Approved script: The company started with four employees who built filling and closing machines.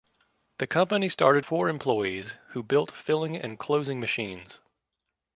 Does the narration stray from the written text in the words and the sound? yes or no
yes